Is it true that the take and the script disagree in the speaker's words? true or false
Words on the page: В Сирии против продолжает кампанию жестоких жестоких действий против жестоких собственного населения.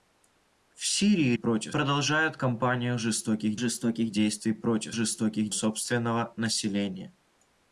false